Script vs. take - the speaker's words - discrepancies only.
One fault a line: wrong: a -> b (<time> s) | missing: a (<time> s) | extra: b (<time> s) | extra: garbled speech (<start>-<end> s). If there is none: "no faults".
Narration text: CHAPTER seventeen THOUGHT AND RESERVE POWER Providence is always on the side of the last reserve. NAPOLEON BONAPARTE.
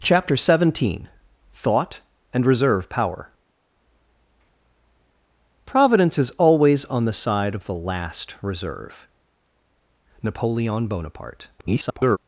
extra: garbled speech (11.6-12.2 s)